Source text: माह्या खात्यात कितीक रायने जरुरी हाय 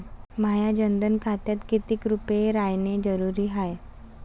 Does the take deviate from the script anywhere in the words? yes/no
yes